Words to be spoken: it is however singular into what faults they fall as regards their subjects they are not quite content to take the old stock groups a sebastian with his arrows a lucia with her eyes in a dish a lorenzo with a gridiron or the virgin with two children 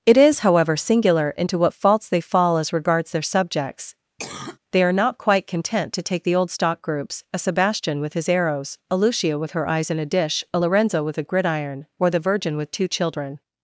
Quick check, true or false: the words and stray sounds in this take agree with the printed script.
false